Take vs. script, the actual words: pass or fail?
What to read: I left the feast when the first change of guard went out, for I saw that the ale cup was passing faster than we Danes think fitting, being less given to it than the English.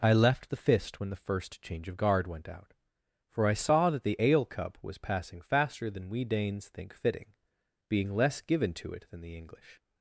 fail